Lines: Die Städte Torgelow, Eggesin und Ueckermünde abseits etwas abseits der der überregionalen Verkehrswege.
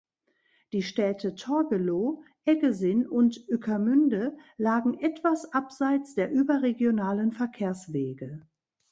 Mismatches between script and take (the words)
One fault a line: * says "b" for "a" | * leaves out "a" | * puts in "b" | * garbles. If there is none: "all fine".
* says "lagen" for "abseits"
* leaves out "der"